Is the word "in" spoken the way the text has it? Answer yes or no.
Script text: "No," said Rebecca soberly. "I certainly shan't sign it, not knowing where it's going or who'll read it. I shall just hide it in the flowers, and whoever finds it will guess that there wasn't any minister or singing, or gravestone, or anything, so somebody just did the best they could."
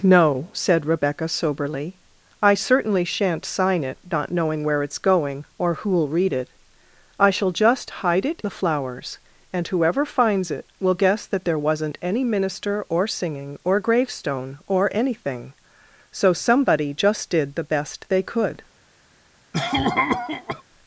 no